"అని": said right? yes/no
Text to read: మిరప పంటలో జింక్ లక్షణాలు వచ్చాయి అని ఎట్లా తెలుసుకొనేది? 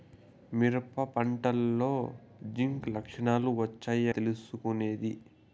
no